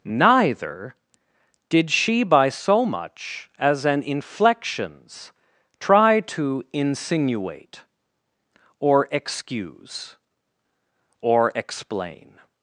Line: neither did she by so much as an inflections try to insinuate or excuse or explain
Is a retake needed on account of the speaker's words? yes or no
no